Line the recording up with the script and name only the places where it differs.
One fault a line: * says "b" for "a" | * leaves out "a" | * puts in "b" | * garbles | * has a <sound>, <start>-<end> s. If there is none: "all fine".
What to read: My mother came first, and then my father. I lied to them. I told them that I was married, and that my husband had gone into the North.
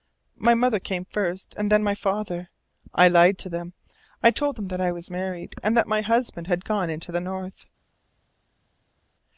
all fine